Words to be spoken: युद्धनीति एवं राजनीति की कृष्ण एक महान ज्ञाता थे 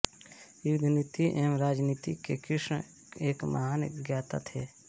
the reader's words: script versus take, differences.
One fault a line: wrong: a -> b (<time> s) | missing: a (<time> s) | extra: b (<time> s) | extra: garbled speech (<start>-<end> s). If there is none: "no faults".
wrong: की -> के (2.2 s)